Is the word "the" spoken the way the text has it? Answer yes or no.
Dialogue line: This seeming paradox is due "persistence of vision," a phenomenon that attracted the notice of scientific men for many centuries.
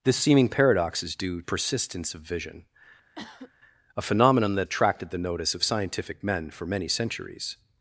yes